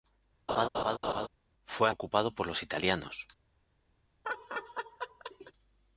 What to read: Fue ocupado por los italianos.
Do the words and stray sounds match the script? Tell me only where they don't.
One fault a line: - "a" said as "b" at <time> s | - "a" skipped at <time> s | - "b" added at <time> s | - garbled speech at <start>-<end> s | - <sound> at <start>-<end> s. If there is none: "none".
- laugh at 0.5-1.3 s
- laugh at 4.2-5.5 s